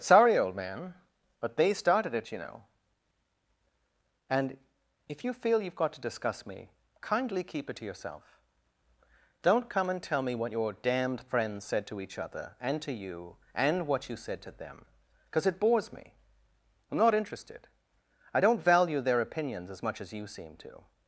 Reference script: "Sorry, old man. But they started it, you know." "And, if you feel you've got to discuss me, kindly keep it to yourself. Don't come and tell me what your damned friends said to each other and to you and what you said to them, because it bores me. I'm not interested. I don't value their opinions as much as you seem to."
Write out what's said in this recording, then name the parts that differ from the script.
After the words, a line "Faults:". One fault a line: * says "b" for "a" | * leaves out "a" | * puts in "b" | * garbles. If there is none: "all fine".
"Sorry, old man. But they started it, you know." "And, if you feel you've got to discuss me, kindly keep it to yourself. Don't come and tell me what your damned friends said to each other and to you and what you said to them, because it bores me. I'm not interested. I don't value their opinions as much as you seem to."
Faults:
all fine